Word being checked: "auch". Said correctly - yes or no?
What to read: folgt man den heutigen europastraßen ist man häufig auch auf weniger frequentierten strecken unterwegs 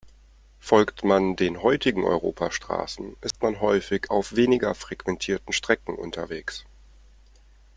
no